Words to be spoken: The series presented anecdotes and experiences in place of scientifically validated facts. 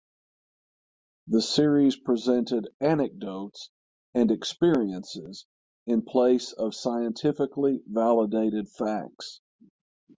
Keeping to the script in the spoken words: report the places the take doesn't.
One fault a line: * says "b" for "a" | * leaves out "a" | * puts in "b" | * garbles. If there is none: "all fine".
all fine